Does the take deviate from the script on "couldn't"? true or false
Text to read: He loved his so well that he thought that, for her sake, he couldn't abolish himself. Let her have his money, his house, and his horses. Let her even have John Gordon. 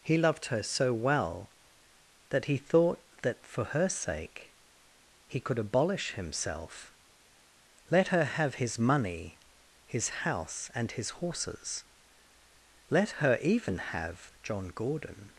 true